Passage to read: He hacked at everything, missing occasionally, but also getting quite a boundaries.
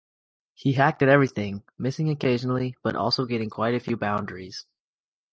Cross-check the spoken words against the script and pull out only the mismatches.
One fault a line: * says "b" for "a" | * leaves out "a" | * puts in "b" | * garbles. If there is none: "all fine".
* puts in "few"